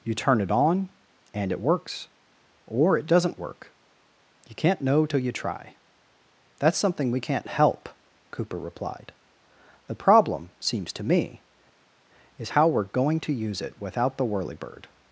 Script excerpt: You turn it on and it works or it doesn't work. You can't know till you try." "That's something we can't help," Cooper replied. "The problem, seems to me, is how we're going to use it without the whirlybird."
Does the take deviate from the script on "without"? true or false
false